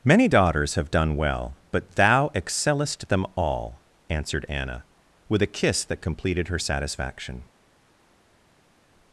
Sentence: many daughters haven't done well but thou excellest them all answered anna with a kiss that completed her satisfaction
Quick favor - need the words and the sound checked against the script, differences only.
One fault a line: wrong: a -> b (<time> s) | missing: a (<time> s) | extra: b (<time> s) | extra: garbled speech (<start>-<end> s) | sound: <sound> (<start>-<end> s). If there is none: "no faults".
wrong: haven't -> have (0.8 s)